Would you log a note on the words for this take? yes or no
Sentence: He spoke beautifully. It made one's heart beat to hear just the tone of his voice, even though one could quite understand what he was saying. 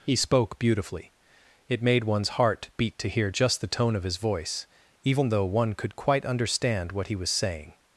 no